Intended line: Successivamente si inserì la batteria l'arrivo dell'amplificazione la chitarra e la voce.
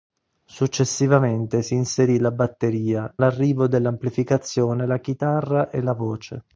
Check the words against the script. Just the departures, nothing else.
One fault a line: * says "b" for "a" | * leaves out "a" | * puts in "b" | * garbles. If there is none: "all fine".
all fine